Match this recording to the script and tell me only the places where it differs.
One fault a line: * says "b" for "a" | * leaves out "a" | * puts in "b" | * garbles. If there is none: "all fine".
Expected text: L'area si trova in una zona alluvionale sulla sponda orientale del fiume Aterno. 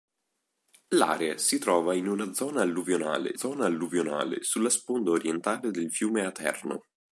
* puts in "zona alluvionale"